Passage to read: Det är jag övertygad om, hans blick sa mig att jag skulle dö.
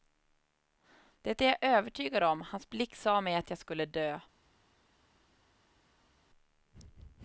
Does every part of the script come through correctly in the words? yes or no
yes